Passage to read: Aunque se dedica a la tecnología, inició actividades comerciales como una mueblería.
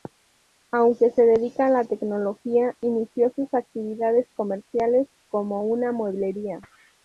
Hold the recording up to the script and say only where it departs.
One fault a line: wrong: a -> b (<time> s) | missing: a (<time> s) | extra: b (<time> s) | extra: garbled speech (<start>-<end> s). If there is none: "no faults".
extra: sus (3.4 s)